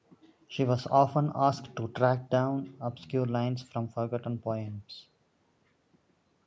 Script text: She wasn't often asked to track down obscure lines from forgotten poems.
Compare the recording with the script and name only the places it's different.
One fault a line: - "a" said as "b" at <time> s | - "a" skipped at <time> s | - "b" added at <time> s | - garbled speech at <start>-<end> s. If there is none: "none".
- "wasn't" said as "was" at 0.6 s